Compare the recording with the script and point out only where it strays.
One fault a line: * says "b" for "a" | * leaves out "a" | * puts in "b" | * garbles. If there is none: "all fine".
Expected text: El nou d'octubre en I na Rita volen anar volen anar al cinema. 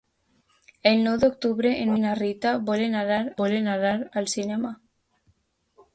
all fine